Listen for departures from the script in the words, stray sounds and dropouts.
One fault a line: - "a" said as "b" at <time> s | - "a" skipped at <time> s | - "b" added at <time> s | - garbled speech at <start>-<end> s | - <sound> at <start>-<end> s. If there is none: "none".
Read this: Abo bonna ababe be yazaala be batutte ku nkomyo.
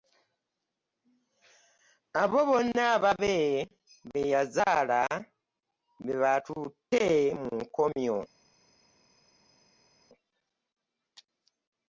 - "ku" said as "mu" at 7.4 s